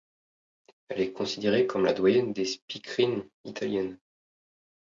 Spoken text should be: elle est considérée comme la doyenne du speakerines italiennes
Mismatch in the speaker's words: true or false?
true